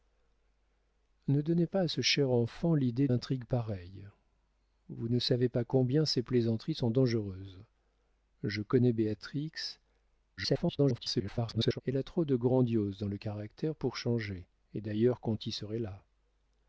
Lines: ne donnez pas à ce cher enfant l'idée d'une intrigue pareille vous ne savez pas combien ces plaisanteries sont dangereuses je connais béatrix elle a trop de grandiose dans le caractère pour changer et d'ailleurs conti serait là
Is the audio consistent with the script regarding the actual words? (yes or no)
no